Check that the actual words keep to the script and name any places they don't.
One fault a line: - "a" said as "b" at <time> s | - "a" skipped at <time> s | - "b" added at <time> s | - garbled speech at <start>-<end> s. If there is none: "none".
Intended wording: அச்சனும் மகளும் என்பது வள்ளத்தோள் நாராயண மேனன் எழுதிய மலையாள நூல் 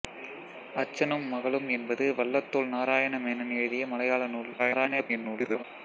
- garbled speech at 4.6-5.6 s